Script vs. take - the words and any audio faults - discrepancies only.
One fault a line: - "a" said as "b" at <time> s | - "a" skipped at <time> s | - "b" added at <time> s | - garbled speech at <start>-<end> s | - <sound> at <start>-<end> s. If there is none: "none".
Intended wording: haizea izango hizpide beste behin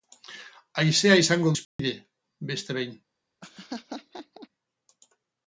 - dropout at 1.6-1.8 s
- laugh at 3.4-4.5 s